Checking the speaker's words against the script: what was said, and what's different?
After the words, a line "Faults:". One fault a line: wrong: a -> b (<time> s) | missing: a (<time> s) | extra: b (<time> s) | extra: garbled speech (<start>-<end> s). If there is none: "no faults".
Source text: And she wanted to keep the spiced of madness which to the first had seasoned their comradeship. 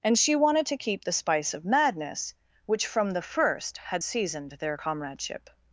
And she wanted to keep the spice of madness which from the first had seasoned their comradeship.
Faults:
wrong: spiced -> spice (1.1 s)
wrong: to -> from (2.9 s)